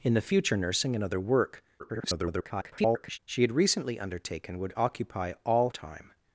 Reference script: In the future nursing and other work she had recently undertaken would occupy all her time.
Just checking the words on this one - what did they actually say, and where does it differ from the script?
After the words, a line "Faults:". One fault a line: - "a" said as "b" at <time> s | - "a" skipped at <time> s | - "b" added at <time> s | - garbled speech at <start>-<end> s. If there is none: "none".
In the future nursing and other work [garbled] she had recently undertaken would occupy all time.
Faults:
- garbled speech at 1.8-3.2 s
- "her" skipped at 5.7 s